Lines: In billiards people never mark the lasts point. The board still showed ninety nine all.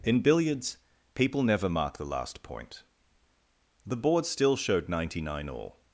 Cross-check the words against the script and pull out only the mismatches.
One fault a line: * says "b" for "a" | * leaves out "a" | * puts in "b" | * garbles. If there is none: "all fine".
* says "last" for "lasts"